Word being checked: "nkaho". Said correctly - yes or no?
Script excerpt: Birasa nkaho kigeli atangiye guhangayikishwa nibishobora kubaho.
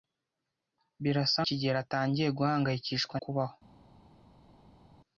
no